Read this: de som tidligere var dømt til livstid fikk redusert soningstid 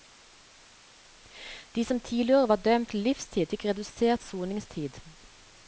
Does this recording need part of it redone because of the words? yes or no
no